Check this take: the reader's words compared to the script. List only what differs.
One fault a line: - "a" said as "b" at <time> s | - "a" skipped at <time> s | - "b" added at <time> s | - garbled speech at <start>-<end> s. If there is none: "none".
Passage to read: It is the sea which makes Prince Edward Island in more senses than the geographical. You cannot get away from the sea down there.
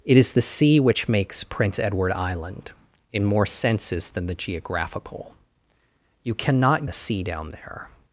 - "get away from" skipped at 6.8 s